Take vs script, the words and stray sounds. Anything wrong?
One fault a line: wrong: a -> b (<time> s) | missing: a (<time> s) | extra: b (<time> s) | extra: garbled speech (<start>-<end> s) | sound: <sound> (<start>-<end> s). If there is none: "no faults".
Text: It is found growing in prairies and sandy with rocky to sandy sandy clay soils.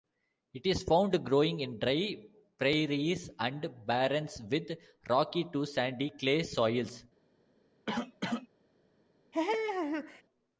extra: dry (1.8 s)
wrong: sandy -> barrens (3.8 s)
missing: sandy (6.1 s)
sound: cough (7.9-8.5 s)
sound: laugh (9.3-10.2 s)